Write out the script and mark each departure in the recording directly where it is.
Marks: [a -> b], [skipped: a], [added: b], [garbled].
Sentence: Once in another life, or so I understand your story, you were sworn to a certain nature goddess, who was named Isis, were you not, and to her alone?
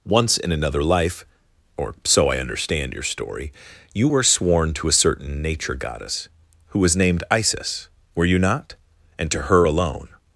Once in another life, or so I understand your story, you were sworn to a certain nature goddess, who was named Isis, were you not, and to her alone?